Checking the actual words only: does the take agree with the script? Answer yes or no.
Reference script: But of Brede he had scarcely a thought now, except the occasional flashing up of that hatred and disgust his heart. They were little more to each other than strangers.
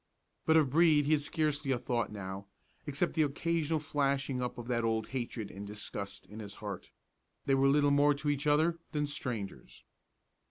no